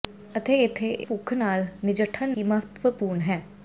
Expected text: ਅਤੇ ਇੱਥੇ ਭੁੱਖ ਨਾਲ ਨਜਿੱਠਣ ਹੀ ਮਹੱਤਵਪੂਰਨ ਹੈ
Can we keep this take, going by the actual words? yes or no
yes